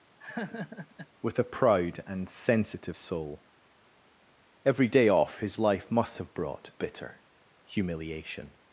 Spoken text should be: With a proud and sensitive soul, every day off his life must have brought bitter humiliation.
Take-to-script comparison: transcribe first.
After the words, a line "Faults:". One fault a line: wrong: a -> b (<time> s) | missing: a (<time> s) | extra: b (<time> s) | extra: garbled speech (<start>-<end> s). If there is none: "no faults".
With a proud and sensitive soul, every day off his life must have brought bitter humiliation.
Faults:
no faults